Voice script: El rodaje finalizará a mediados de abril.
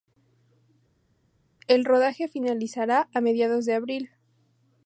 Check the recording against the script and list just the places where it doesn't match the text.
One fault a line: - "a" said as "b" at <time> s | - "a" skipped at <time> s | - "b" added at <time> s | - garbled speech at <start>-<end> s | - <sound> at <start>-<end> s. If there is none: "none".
none